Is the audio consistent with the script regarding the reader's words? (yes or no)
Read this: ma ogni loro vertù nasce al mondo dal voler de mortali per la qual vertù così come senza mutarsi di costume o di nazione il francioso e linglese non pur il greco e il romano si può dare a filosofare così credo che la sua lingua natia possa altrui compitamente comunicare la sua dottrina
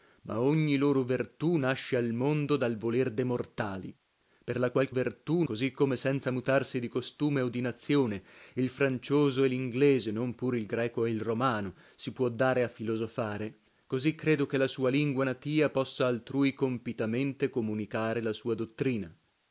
yes